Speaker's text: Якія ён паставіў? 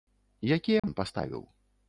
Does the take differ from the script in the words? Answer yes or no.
no